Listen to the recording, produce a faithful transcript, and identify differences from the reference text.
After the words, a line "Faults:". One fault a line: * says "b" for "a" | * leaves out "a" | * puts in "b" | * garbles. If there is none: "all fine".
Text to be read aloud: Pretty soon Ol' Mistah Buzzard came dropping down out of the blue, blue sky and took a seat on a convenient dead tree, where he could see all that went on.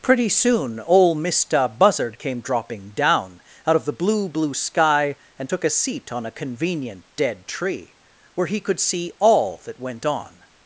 Pretty soon Ol' Mistah Buzzard came dropping down out of the blue, blue sky and took a seat on a convenient dead tree, where he could see all that went on.
Faults:
all fine